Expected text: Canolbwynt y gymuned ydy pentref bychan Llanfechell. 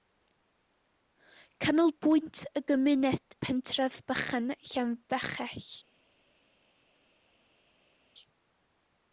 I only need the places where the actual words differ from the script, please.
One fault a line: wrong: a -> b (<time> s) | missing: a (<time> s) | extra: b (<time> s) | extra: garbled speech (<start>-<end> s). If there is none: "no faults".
missing: ydy (3.4 s)